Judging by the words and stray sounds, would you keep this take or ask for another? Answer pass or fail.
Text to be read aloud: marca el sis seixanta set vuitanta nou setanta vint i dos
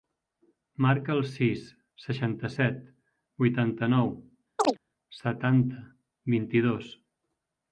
fail